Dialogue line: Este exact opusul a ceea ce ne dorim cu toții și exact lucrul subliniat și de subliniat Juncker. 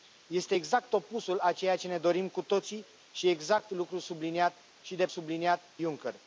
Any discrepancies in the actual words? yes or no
no